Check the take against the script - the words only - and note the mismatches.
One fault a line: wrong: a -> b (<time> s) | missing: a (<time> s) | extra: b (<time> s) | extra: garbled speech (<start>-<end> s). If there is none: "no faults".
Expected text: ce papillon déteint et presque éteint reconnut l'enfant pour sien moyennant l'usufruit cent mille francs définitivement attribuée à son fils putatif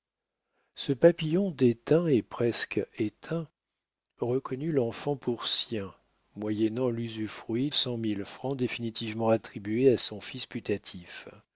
no faults